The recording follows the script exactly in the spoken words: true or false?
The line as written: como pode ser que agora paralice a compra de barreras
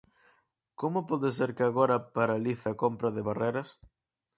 true